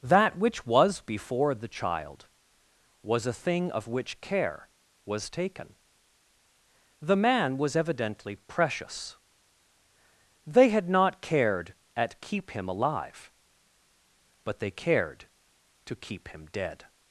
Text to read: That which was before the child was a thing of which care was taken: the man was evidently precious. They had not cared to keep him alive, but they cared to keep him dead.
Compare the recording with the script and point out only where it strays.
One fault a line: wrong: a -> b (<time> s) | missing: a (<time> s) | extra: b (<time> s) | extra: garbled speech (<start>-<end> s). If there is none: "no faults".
wrong: to -> at (11.9 s)